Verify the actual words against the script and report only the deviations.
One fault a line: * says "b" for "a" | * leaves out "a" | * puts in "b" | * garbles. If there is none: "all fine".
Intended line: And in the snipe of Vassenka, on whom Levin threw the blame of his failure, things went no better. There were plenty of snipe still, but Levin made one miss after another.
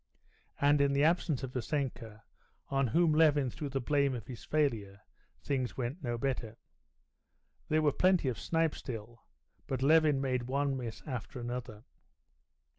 * says "absence" for "snipe"